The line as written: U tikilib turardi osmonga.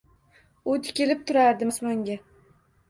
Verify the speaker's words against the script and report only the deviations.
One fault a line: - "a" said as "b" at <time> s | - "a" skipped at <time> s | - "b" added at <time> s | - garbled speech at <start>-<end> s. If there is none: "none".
none